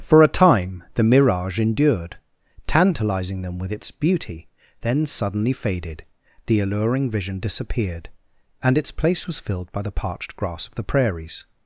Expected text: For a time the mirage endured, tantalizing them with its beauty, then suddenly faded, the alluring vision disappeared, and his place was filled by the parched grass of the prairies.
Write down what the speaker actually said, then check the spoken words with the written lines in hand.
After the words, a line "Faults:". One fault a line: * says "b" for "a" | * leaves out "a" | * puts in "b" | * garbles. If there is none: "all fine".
For a time the mirage endured, tantalizing them with its beauty, then suddenly faded, the alluring vision disappeared, and its place was filled by the parched grass of the prairies.
Faults:
* says "its" for "his"